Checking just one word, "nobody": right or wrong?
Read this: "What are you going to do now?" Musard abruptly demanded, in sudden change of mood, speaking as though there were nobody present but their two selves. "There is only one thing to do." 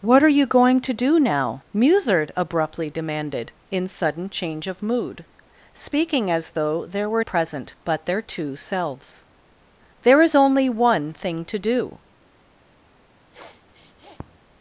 wrong